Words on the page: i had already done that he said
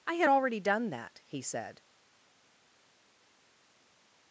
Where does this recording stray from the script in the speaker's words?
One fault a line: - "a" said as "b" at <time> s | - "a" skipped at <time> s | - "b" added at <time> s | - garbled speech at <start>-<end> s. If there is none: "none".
none